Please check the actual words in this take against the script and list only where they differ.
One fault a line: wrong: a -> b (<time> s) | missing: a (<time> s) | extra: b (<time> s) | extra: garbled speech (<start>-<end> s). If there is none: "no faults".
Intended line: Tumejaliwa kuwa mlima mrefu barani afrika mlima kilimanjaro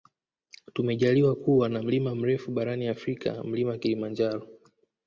extra: na (1.7 s)